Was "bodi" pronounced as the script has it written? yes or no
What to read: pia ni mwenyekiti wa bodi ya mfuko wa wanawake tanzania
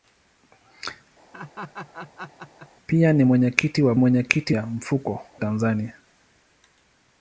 no